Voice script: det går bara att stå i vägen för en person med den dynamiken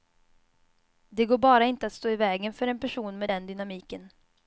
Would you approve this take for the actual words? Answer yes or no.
no